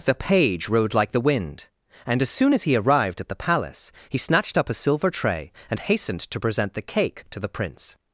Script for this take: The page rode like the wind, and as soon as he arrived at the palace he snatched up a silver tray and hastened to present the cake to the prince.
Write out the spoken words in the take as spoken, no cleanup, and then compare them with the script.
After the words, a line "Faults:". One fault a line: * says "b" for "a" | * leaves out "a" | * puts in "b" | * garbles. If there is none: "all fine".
The page rode like the wind, and as soon as he arrived at the palace he snatched up a silver tray and hastened to present the cake to the prince.
Faults:
all fine